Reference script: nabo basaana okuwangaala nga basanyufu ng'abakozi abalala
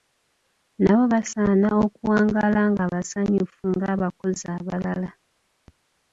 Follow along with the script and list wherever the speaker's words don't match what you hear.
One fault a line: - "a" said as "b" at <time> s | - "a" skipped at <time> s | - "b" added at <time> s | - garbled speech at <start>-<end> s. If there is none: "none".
none